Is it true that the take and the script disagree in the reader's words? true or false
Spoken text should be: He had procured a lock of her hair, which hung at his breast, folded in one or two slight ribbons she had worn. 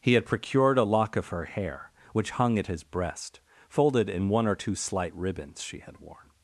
false